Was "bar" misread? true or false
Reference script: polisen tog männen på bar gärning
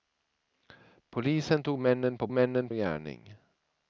true